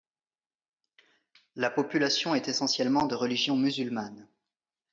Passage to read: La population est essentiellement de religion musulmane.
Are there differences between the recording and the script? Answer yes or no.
no